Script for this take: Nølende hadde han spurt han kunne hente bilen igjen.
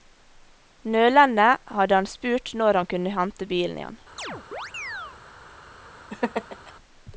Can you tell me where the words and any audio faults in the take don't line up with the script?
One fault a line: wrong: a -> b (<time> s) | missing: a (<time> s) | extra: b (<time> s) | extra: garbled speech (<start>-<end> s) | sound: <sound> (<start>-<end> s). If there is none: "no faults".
extra: når (2.6 s)
sound: chirp (4.2-5.2 s)
sound: laugh (6.1-6.7 s)